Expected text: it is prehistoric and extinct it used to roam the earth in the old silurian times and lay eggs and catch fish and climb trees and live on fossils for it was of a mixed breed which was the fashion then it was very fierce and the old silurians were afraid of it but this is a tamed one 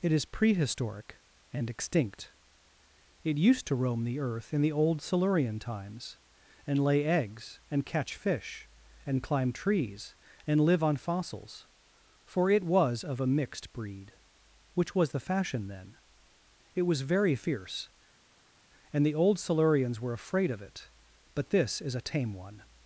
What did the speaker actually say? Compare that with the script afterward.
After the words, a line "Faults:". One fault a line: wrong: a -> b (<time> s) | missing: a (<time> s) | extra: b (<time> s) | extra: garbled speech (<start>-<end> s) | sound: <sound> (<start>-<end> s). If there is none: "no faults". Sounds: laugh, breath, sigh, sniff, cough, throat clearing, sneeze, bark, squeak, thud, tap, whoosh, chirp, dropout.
it is prehistoric and extinct it used to roam the earth in the old silurian times and lay eggs and catch fish and climb trees and live on fossils for it was of a mixed breed which was the fashion then it was very fierce and the old silurians were afraid of it but this is a tame one
Faults:
wrong: tamed -> tame (22.0 s)